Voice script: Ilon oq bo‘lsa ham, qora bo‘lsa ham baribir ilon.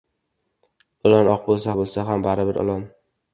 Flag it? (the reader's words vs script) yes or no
yes